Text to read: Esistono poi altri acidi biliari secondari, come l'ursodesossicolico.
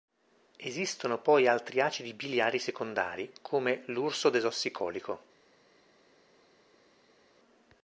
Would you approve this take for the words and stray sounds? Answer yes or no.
yes